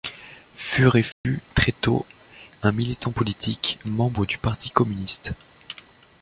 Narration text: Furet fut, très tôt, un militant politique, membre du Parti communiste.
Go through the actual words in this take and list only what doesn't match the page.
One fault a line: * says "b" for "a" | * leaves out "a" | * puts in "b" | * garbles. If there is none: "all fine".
all fine